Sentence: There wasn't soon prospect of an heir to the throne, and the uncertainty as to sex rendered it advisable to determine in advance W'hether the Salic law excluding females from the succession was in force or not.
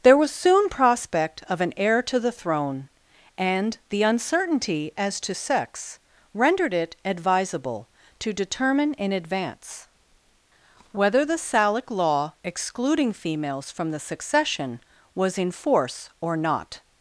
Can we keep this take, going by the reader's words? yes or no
no